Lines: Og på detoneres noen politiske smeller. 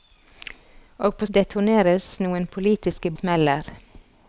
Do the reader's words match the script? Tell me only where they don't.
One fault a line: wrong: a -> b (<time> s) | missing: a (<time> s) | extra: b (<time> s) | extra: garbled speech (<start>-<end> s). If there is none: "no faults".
no faults